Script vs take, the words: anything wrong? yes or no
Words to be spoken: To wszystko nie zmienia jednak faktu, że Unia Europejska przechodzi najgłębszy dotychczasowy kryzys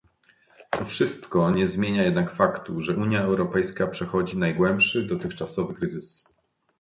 no